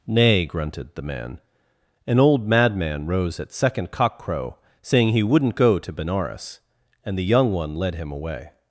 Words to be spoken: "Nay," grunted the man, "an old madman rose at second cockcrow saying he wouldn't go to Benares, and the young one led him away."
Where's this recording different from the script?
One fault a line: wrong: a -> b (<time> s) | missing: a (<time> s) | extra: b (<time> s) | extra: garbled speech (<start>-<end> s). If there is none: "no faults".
no faults